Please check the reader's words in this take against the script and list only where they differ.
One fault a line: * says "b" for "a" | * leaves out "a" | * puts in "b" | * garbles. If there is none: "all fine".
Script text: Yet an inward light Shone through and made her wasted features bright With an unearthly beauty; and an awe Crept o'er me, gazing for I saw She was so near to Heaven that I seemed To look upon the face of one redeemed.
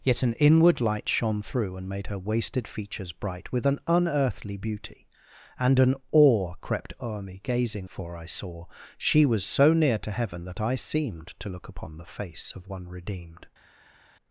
all fine